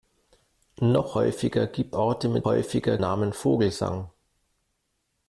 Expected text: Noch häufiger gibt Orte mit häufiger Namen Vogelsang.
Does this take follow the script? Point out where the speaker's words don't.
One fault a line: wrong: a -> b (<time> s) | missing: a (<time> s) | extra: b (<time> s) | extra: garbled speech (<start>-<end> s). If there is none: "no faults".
no faults